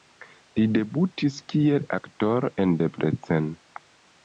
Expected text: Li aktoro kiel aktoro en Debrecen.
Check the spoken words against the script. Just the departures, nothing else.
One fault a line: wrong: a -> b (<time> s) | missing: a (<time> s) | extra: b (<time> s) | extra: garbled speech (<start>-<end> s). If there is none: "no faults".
wrong: aktoro -> debutis (0.8 s)